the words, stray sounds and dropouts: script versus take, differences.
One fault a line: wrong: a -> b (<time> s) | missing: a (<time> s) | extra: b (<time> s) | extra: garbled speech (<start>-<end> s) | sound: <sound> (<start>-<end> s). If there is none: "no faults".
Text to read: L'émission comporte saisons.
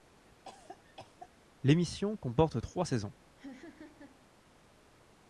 sound: cough (0.4-1.3 s)
extra: trois (2.6 s)
sound: laugh (3.4-4.2 s)